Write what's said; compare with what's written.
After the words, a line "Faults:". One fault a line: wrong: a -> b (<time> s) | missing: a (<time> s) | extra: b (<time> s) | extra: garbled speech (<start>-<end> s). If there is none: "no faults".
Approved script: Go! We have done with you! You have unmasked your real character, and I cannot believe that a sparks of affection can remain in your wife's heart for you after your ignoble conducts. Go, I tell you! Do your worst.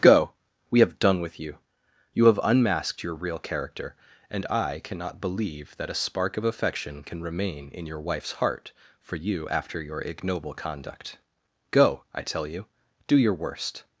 Go! We have done with you! You have unmasked your real character, and I cannot believe that a spark of affection can remain in your wife's heart for you after your ignoble conduct. Go, I tell you! Do your worst.
Faults:
wrong: sparks -> spark (6.0 s)
wrong: conducts -> conduct (10.6 s)